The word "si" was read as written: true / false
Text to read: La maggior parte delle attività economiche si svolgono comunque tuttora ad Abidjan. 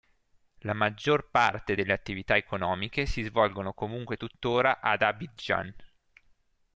true